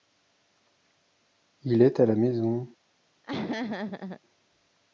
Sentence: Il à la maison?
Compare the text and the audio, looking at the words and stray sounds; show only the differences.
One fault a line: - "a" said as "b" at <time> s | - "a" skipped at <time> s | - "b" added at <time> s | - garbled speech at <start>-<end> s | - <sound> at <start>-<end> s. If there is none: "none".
- "est" added at 1.8 s
- laugh at 3.2-4.2 s